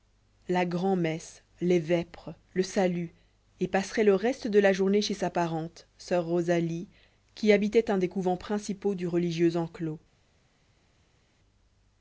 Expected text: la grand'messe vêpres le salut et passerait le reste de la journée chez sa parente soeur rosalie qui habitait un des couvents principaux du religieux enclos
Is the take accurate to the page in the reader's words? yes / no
no